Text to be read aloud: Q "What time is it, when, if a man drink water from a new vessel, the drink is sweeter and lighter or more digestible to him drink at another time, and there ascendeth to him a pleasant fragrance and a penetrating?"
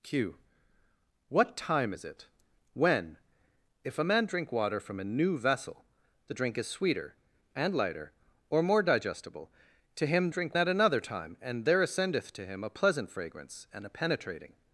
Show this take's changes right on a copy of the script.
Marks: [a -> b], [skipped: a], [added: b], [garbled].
Q "What time is it, when, if a man drink water from a new vessel, the drink is sweeter and lighter or more digestible to him drink at another time, and there ascendeth to him a pleasant fragrance and a penetrating?"